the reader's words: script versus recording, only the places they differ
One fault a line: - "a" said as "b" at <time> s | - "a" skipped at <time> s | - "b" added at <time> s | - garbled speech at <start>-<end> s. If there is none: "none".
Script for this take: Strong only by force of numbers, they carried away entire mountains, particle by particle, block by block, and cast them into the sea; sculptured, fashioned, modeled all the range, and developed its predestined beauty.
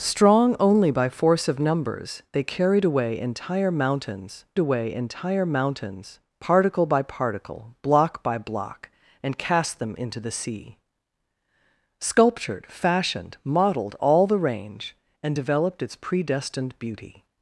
- "away entire mountains" added at 4.6 s